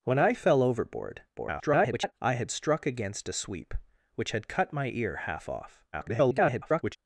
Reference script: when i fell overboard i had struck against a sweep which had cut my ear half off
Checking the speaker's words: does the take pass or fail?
fail